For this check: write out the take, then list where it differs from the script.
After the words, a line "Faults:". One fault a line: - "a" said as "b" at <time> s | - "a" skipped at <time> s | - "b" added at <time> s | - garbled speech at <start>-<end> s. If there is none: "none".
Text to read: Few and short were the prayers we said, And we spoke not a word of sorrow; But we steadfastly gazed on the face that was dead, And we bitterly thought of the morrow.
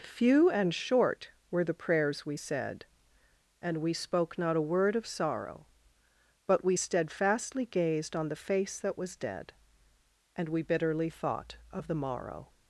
Few and short were the prayers we said, And we spoke not a word of sorrow; But we steadfastly gazed on the face that was dead, And we bitterly thought of the morrow.
Faults:
none